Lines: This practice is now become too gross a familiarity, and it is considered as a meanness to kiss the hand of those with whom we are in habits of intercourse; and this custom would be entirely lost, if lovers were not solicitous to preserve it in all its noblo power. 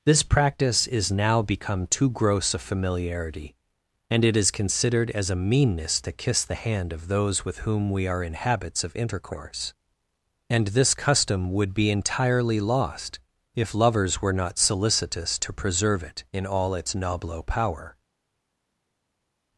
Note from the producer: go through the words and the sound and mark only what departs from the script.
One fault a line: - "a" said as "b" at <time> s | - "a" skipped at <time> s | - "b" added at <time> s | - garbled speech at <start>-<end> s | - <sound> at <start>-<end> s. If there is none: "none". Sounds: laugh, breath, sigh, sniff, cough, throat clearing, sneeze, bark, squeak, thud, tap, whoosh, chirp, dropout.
none